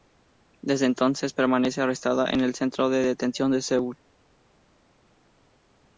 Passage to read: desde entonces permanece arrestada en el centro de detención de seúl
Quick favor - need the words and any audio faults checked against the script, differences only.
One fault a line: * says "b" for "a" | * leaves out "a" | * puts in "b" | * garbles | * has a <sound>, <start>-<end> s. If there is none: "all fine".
all fine